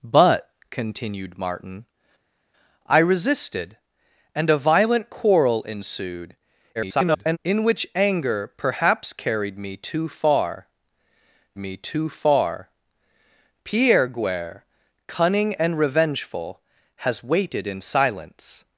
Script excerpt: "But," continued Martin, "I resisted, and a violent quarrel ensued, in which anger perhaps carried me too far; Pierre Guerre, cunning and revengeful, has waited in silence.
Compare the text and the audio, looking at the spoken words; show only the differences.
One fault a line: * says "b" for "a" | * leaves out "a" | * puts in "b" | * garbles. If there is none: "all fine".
* garbles
* puts in "me too far"